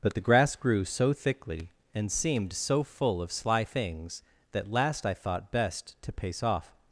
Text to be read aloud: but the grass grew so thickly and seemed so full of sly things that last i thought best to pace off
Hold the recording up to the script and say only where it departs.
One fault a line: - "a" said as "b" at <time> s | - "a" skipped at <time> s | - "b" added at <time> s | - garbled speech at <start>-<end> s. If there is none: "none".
none